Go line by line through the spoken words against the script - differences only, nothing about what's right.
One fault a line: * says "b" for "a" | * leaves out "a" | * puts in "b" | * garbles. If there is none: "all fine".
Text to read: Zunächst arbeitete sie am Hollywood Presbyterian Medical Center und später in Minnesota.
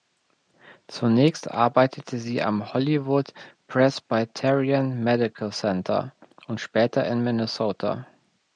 all fine